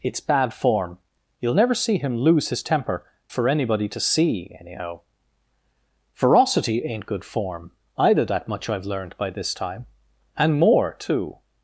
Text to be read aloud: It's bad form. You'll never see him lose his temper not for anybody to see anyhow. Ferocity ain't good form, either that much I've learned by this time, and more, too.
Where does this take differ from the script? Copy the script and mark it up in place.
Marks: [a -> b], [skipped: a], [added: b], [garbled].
It's bad form. You'll never see him lose his temper [skipped: not] for anybody to see anyhow. Ferocity ain't good form, either that much I've learned by this time, and more, too.